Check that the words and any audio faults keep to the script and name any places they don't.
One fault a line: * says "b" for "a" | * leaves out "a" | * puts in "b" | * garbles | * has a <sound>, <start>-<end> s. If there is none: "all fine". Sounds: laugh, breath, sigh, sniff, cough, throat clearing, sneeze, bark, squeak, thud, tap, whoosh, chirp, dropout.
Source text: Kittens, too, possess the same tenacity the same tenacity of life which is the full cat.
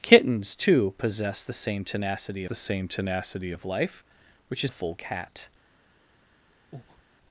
* has a breath, 6.7-7.0 s